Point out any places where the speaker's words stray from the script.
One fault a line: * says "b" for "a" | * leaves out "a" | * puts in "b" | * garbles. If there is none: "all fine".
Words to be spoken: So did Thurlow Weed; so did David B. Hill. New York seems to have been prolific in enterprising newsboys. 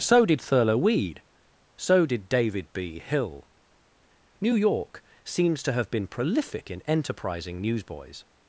all fine